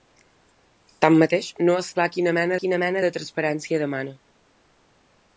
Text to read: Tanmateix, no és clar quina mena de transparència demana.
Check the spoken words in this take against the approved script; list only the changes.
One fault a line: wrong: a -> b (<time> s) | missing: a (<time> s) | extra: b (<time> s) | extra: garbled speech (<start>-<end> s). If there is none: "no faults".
extra: quina mena (2.6 s)